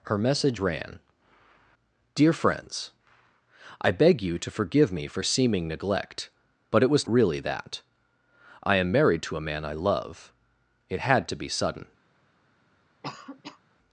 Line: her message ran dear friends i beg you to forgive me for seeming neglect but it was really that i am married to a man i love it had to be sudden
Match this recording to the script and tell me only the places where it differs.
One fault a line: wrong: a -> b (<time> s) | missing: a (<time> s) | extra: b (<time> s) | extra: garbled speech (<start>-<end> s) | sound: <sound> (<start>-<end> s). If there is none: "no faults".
sound: cough (13.0-13.6 s)